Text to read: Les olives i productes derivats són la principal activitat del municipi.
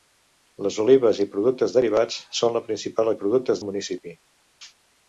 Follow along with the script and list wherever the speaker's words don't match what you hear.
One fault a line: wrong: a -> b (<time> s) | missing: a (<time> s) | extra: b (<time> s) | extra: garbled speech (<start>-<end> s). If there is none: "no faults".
wrong: activitat -> productes (3.2 s)